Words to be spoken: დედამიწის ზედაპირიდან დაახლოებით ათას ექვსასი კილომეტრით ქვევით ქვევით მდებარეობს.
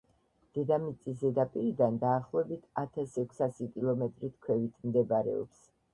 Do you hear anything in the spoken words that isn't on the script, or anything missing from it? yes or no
yes